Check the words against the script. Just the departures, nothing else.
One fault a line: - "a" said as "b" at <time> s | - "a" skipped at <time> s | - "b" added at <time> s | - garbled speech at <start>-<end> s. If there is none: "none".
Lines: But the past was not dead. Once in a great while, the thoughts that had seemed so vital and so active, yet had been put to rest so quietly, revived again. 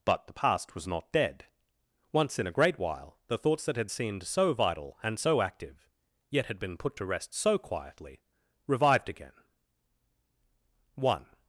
- "One" added at 10.9 s